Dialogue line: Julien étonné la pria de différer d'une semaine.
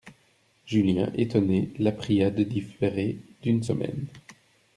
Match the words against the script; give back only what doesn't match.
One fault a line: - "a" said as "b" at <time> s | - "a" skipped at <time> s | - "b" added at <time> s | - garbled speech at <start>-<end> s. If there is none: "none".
none